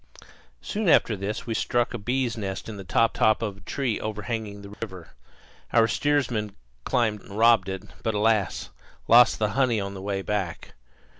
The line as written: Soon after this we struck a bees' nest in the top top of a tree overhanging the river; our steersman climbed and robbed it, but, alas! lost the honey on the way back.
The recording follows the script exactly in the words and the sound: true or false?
false